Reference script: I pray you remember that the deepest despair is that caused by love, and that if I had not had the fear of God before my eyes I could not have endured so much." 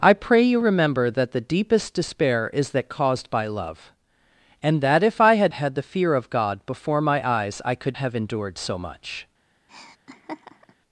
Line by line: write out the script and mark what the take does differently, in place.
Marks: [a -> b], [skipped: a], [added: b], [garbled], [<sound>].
I pray you remember that the deepest despair is that caused by love, and that if I had [skipped: not] had the fear of God before my eyes I could [skipped: not] have endured so much." [laugh]